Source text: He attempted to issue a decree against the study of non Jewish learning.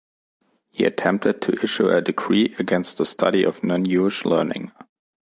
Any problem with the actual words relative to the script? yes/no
no